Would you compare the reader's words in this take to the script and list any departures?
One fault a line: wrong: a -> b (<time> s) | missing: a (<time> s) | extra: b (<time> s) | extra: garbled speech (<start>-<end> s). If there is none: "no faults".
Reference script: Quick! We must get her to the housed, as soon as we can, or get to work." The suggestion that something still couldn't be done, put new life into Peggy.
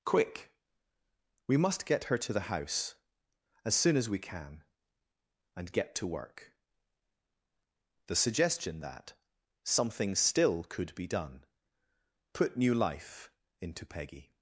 wrong: housed -> house (2.5 s)
wrong: or -> and (5.6 s)
wrong: couldn't -> could (10.6 s)